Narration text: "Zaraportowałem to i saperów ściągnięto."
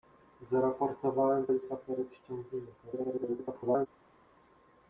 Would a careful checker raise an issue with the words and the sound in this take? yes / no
yes